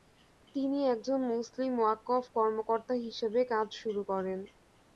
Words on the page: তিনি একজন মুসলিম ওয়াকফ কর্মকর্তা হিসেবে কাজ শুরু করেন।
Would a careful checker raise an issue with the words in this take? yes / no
no